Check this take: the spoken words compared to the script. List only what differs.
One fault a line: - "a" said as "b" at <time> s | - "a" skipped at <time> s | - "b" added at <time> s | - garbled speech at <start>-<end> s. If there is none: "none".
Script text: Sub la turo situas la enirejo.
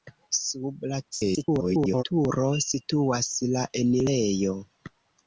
- garbled speech at 1.1-2.0 s